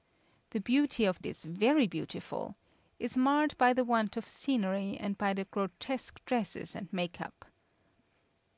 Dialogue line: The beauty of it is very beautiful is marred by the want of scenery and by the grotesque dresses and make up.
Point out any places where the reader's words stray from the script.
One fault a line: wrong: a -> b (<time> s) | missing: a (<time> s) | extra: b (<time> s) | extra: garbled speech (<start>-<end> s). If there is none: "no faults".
no faults